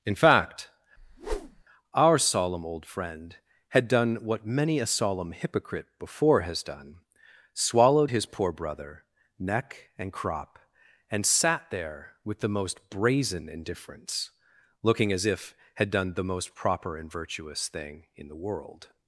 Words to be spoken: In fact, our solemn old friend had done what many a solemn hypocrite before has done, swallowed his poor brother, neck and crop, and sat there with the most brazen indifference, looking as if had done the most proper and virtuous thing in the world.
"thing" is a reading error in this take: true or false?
false